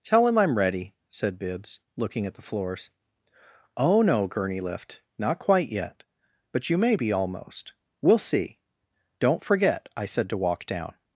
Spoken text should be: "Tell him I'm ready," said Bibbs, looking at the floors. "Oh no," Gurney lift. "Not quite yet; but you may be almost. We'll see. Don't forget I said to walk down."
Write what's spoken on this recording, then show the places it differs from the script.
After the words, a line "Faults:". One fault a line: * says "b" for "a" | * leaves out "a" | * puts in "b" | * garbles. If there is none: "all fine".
"Tell him I'm ready," said Bibbs, looking at the floors. "Oh no," Gurney lift. "Not quite yet; but you may be almost. We'll see. Don't forget I said to walk down."
Faults:
all fine